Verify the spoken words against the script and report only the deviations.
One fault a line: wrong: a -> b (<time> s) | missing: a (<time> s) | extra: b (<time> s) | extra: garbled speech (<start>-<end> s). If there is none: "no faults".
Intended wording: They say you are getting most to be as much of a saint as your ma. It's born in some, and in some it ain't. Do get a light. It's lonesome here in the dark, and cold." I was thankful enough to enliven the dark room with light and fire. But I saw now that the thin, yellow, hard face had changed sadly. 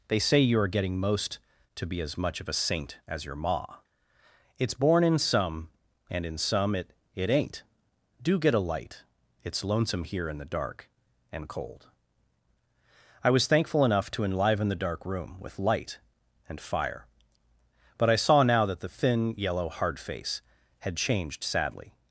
extra: it (7.2 s)